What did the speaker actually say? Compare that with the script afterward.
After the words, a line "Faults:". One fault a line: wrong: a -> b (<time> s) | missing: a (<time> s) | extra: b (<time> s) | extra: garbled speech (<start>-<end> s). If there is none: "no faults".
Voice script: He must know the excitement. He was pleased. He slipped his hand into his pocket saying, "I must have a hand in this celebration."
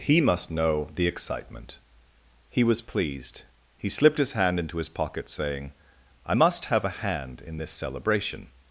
He must know the excitement. He was pleased. He slipped his hand into his pocket saying, "I must have a hand in this celebration."
Faults:
no faults